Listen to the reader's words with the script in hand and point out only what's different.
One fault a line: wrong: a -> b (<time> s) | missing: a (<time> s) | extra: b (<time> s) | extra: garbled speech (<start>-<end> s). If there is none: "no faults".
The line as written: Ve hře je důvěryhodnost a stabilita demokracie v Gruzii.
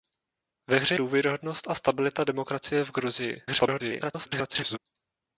missing: je (0.9 s)
extra: garbled speech (3.5-4.8 s)